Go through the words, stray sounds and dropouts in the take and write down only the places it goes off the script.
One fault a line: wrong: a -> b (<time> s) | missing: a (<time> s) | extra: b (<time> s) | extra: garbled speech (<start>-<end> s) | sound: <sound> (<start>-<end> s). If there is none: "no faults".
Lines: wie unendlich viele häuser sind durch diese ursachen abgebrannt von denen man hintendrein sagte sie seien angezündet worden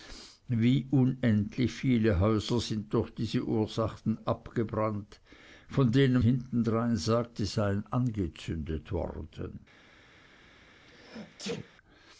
missing: man (6.2 s)
missing: sie (7.5 s)
sound: sneeze (10.9-11.7 s)